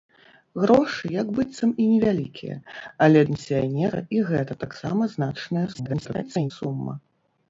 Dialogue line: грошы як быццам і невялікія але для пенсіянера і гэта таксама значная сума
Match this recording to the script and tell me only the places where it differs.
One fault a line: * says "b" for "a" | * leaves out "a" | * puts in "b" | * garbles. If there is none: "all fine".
* leaves out "для"
* garbles